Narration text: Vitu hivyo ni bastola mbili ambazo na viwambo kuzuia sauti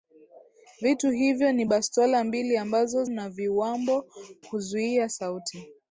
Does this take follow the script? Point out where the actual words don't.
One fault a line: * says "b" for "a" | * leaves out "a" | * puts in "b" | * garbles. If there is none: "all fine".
all fine